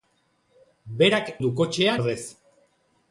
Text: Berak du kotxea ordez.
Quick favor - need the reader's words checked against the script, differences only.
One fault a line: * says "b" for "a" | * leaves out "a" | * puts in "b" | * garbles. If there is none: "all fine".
all fine